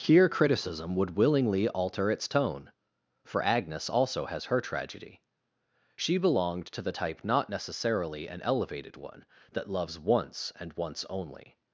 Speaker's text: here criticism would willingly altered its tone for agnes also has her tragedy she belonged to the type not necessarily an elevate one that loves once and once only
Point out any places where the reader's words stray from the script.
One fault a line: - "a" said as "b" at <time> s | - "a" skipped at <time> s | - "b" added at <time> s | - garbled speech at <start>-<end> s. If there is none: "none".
- "altered" said as "alter" at 1.7 s
- "elevate" said as "elevated" at 8.4 s